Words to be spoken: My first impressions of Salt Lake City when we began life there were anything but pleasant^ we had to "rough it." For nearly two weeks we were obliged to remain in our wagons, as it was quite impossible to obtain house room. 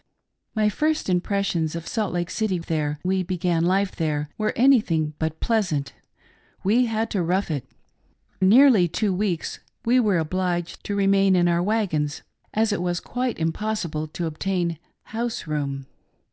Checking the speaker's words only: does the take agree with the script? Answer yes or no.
no